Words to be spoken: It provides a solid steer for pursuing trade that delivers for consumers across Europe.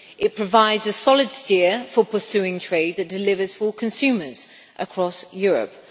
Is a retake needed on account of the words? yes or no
no